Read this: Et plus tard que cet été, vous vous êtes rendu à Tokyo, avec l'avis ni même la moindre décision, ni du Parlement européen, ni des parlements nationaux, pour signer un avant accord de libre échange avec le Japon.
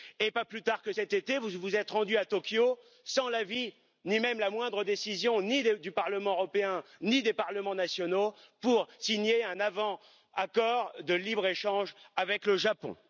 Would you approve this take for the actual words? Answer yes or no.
no